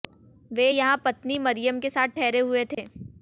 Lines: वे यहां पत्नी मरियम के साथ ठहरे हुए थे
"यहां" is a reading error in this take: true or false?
false